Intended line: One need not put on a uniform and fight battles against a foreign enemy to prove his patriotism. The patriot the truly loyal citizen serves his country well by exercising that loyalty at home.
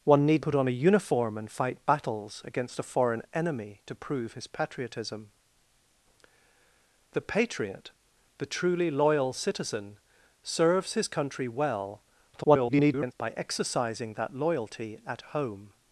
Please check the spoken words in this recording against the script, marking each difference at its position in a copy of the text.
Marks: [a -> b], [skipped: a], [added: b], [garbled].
One need [skipped: not] put on a uniform and fight battles against a foreign enemy to prove his patriotism. The patriot the truly loyal citizen serves his country well [garbled] by exercising that loyalty at home.